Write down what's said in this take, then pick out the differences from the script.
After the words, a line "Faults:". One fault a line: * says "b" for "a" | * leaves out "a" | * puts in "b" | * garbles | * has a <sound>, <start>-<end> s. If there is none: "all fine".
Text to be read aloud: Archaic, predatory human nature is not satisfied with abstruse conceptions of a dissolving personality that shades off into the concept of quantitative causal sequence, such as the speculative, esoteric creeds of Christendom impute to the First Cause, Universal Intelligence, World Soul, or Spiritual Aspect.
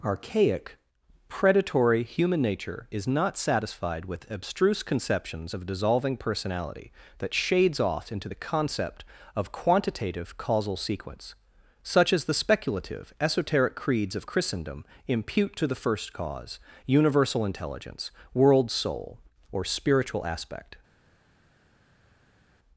Archaic, predatory human nature is not satisfied with abstruse conceptions of dissolving personality that shades off into the concept of quantitative causal sequence, such as the speculative, esoteric creeds of Christendom impute to the First Cause, Universal Intelligence, World Soul, or Spiritual Aspect.
Faults:
* leaves out "a"